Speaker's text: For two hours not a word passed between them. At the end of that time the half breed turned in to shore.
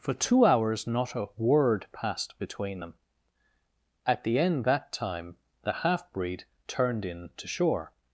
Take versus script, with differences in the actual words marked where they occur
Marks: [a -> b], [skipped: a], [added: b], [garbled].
For two hours not a word passed between them. At the end [skipped: of] that time the half breed turned in to shore.